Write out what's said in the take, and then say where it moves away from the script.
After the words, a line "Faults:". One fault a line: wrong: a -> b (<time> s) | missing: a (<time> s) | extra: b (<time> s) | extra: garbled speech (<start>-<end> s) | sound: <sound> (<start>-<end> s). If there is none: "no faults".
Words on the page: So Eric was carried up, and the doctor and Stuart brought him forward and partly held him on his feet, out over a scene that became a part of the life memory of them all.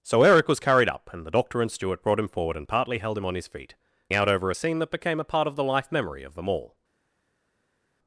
So Eric was carried up, and the doctor and Stuart brought him forward and partly held him on his feet, out over a scene that became a part of the life memory of them all.
Faults:
no faults